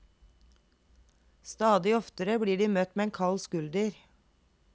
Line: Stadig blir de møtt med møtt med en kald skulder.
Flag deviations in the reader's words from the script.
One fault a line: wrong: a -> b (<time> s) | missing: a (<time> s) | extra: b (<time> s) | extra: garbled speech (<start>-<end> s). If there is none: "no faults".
extra: oftere (2.0 s)
missing: møtt med (3.1 s)